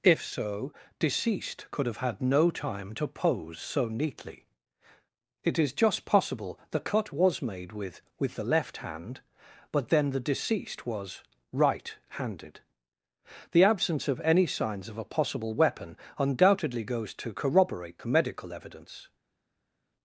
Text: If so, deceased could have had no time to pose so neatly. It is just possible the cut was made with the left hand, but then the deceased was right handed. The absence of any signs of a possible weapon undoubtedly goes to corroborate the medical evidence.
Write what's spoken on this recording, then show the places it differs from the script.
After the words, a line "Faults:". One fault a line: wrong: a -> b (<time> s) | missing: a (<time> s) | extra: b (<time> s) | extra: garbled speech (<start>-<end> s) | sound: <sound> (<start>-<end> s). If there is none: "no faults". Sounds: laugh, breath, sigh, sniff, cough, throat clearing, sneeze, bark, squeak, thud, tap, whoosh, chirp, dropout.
If so, deceased could have had no time to pose so neatly. It is just possible the cut was made with with the left hand, but then the deceased was right handed. The absence of any signs of a possible weapon undoubtedly goes to corroborate the medical evidence.
Faults:
extra: with (8.2 s)